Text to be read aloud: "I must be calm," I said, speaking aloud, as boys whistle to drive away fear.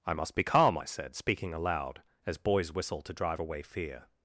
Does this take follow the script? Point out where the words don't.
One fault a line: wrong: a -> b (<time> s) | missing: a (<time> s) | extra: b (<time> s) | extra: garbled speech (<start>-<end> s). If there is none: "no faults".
no faults